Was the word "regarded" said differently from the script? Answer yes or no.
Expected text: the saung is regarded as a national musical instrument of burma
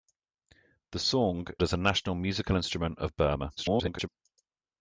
yes